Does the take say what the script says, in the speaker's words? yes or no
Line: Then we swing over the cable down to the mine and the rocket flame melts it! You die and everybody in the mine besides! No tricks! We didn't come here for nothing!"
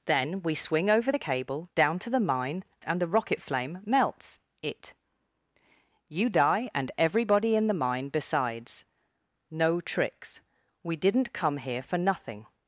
yes